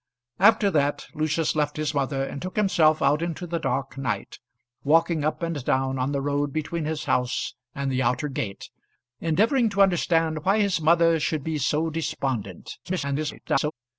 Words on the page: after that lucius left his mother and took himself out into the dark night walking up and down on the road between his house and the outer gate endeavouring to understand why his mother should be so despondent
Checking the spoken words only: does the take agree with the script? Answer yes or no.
no